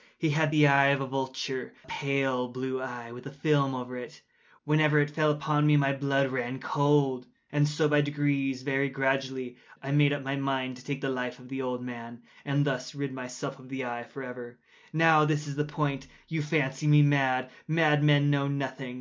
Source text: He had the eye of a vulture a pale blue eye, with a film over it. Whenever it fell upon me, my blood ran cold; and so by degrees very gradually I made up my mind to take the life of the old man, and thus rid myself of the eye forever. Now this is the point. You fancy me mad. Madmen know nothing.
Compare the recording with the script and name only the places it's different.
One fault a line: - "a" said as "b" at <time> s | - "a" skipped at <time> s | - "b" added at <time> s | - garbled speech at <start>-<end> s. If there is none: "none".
- "a" skipped at 1.7 s